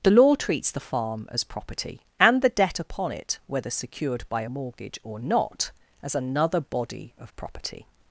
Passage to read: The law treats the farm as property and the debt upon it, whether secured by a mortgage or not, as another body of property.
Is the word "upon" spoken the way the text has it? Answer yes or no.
yes